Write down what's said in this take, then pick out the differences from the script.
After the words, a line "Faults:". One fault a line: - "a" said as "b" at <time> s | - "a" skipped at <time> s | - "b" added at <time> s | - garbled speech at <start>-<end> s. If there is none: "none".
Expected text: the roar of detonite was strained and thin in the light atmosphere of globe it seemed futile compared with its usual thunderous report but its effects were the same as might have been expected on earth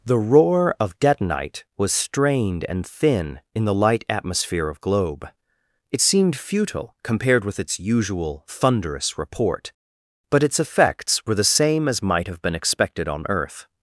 the roar of detonite was strained and thin in the light atmosphere of globe it seemed futile compared with its usual thunderous report but its effects were the same as might have been expected on earth
Faults:
none